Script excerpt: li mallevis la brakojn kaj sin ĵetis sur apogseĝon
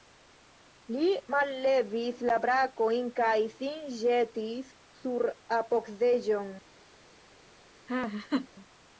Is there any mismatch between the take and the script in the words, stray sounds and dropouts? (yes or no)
yes